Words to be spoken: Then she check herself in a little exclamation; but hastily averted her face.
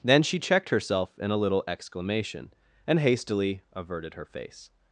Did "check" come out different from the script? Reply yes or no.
yes